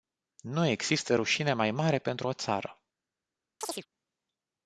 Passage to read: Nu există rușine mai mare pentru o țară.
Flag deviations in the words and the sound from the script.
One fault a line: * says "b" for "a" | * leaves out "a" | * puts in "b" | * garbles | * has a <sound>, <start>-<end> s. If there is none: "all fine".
* has a chirp, 3.6-3.9 s